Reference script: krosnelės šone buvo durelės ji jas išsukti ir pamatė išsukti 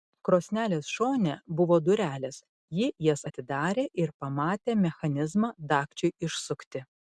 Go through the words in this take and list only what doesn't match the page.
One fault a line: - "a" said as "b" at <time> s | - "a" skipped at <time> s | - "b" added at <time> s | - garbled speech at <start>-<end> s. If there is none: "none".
- "išsukti" said as "atidarė" at 3.3 s
- "mechanizmą dagčiui" added at 4.9 s